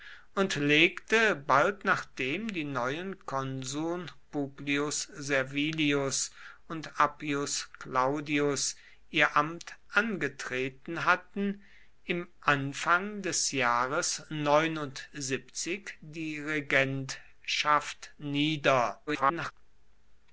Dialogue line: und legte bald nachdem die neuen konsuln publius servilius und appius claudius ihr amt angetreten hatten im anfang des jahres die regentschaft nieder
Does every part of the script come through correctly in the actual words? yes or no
no